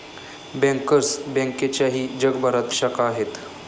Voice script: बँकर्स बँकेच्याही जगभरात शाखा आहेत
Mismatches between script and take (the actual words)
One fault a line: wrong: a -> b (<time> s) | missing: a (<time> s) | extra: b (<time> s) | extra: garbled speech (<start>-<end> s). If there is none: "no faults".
no faults